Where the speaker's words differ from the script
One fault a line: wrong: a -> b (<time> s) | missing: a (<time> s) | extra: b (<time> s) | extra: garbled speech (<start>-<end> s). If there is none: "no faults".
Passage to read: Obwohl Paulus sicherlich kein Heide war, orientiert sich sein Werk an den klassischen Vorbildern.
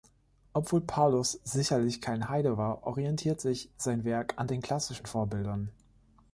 no faults